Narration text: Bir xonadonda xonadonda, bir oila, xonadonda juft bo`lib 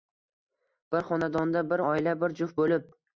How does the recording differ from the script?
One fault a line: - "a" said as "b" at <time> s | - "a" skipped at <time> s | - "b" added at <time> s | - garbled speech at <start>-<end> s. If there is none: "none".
- "xonadonda" skipped at 1.6 s
- "xonadonda" said as "bir" at 2.2 s